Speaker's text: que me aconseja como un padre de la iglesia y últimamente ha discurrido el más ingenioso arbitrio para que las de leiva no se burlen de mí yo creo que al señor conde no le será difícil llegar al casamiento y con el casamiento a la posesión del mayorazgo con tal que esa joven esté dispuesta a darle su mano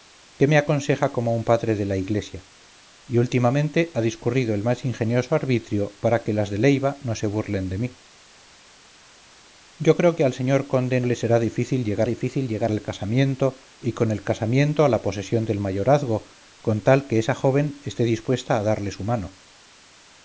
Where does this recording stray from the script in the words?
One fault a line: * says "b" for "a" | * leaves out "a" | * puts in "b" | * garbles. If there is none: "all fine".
* leaves out "no"
* puts in "difícil llegar"